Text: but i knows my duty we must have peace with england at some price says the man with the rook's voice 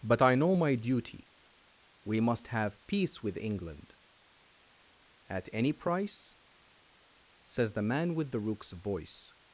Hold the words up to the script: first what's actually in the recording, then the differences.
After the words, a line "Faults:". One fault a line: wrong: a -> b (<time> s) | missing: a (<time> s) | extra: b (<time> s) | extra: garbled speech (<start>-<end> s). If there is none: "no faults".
but i know my duty we must have peace with england at any price says the man with the rook's voice
Faults:
wrong: knows -> know (0.3 s)
wrong: some -> any (5.5 s)